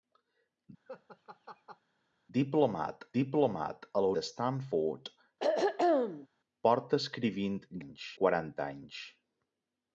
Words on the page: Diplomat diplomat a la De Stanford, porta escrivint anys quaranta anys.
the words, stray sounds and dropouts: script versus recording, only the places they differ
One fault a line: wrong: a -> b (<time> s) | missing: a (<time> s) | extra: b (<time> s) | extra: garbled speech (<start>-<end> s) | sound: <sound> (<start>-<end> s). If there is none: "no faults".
sound: laugh (0.9-1.8 s)
sound: throat clearing (5.4-6.3 s)